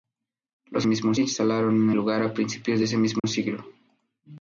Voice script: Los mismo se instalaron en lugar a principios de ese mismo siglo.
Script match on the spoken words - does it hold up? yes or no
yes